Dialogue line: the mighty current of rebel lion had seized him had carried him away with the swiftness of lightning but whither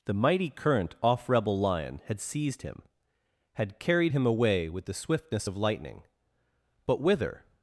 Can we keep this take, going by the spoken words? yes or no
no